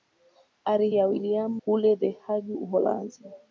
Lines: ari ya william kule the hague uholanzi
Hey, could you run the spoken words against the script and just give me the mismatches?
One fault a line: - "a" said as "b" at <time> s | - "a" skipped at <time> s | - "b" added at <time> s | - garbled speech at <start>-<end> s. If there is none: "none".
none